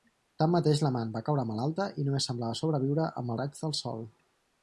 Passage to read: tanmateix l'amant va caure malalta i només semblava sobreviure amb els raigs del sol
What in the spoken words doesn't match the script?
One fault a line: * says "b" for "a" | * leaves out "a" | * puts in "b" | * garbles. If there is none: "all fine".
* leaves out "els"